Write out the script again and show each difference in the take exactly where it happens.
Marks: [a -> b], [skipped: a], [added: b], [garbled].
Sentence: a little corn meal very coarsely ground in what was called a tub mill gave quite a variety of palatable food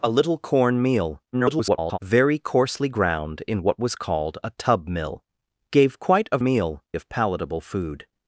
a little corn meal [garbled] very coarsely ground in what was called a tub mill gave quite a [variety -> meal] of palatable food